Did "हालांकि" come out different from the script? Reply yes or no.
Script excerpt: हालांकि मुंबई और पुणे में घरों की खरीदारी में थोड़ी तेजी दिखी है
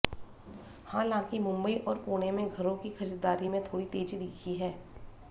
no